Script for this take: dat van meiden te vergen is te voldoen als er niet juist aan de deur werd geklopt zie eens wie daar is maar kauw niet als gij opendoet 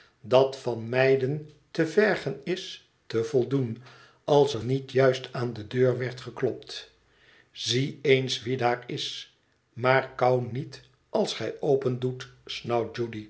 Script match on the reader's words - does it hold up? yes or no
yes